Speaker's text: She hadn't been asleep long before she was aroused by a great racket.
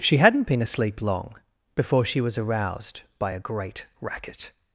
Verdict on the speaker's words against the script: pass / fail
pass